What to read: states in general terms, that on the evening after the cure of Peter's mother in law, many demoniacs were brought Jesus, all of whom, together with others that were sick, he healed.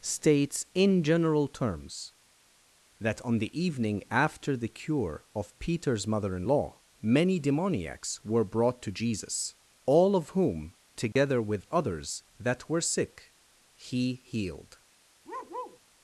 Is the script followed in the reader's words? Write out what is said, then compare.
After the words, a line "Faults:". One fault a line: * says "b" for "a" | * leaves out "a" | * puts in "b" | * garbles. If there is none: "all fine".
states in general terms, that on the evening after the cure of Peter's mother in law, many demoniacs were brought to Jesus, all of whom, together with others that were sick, he healed.
Faults:
* puts in "to"